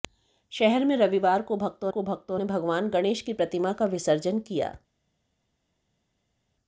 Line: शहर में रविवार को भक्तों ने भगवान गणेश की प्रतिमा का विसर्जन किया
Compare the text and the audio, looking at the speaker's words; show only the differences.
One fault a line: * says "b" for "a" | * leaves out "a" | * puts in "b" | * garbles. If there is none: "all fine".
* puts in "को भक्तों"